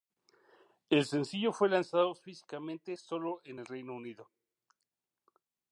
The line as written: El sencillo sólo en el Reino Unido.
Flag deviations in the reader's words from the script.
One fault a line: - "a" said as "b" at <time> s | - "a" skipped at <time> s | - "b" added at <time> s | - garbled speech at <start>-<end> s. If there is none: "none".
- "fue lanzado físicamente" added at 1.5 s